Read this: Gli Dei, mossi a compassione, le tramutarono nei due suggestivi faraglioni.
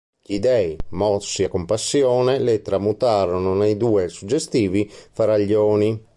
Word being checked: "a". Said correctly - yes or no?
yes